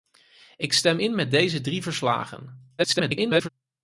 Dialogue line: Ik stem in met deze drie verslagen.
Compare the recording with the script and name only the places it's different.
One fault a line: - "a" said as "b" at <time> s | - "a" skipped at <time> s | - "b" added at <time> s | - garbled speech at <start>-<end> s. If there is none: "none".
- garbled speech at 2.8-3.5 s